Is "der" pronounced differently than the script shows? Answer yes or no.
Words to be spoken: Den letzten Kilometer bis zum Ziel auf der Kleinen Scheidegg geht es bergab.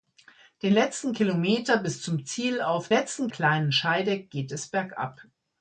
yes